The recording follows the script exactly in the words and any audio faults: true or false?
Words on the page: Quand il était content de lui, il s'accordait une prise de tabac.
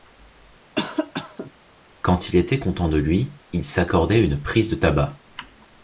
false